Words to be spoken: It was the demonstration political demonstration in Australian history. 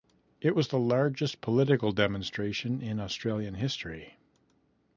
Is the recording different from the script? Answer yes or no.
yes